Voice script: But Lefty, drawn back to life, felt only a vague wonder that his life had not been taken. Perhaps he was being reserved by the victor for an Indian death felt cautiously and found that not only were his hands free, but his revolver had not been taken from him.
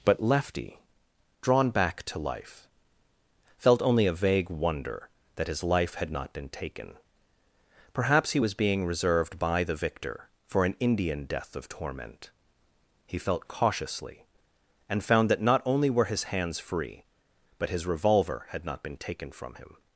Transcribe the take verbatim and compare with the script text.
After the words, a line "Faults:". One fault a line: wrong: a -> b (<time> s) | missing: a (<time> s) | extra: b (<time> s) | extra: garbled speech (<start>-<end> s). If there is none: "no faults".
But Lefty, drawn back to life, felt only a vague wonder that his life had not been taken. Perhaps he was being reserved by the victor for an Indian death of torment. He felt cautiously and found that not only were his hands free, but his revolver had not been taken from him.
Faults:
extra: of torment He (11.6 s)